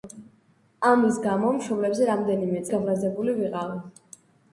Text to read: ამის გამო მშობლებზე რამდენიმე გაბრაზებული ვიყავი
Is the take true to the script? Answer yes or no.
yes